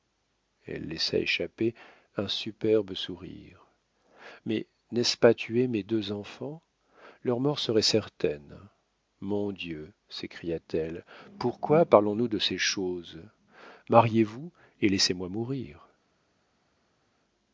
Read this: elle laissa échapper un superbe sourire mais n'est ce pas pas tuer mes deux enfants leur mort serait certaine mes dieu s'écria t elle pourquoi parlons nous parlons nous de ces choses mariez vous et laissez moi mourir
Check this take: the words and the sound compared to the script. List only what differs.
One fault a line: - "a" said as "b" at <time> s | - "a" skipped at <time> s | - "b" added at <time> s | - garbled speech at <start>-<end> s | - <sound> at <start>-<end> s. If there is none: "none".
- "pas" skipped at 5.3 s
- "mes" said as "mon" at 9.2 s
- "parlons nous" skipped at 12.3 s